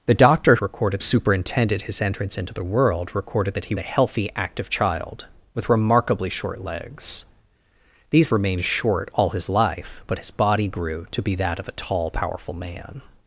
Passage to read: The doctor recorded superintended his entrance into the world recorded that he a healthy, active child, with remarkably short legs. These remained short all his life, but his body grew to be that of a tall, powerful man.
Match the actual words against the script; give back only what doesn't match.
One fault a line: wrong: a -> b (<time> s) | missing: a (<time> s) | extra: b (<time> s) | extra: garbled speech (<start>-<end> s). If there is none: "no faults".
no faults